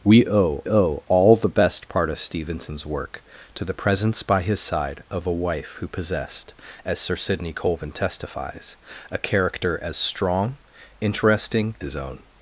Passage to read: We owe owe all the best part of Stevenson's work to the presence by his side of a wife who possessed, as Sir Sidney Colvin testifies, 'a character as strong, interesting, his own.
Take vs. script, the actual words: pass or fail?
pass